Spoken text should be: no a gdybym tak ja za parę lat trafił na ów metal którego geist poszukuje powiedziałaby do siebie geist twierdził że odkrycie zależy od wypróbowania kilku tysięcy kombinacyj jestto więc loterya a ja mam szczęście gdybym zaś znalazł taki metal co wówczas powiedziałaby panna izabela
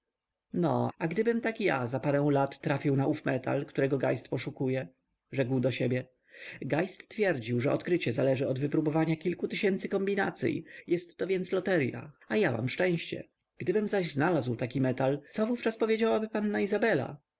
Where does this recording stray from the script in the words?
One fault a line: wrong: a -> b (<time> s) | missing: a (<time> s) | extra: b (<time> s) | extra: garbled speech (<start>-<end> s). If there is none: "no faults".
wrong: powiedziałaby -> rzekł (5.3 s)